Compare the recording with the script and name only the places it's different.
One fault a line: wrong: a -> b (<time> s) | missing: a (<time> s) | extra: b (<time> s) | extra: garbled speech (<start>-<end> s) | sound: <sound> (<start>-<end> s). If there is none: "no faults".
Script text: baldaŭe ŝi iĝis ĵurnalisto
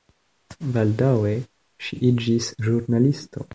no faults